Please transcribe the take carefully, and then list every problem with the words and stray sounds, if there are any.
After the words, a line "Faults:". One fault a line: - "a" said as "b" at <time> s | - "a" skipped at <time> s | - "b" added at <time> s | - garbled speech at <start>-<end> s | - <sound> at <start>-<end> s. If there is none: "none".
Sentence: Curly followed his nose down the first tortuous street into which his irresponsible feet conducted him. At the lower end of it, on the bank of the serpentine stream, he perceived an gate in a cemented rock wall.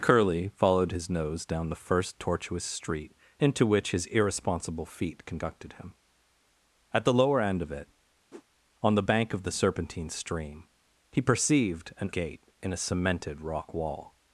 Curly followed his nose down the first tortuous street into which his irresponsible feet conducted him. At the lower end of it, on the bank of the serpentine stream, he perceived an gate in a cemented rock wall.
Faults:
- whoosh at 8.3-8.4 s